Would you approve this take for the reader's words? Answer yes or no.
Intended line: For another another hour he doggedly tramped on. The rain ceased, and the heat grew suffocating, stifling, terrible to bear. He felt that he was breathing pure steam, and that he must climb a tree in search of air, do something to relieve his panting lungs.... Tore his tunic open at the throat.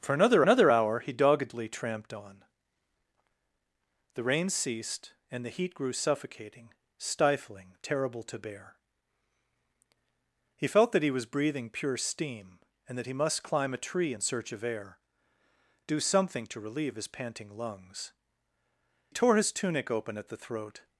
yes